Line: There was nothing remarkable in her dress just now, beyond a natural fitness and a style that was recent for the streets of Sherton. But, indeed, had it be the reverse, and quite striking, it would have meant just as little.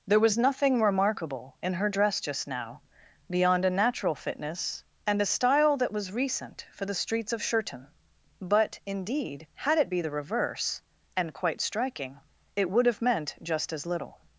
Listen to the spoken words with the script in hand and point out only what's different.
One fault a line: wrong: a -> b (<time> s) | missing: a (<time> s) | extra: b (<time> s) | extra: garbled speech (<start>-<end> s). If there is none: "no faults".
no faults